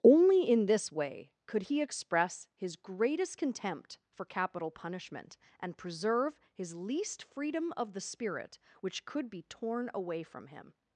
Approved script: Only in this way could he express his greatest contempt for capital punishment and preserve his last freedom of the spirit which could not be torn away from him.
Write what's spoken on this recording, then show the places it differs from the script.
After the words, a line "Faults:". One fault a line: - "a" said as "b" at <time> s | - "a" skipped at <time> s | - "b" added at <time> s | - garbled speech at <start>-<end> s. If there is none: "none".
Only in this way could he express his greatest contempt for capital punishment and preserve his least freedom of the spirit which could be torn away from him.
Faults:
- "last" said as "least" at 6.8 s
- "not" skipped at 9.3 s